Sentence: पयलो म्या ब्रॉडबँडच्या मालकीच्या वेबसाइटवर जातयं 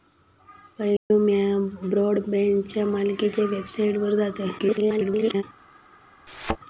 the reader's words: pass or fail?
fail